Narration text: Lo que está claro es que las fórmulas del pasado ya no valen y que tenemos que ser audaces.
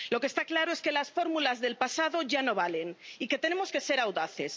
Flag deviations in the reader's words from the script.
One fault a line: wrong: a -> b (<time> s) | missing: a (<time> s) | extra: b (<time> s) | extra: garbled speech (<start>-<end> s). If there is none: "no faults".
no faults